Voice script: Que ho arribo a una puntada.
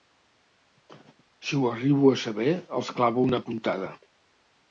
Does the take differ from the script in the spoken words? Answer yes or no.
yes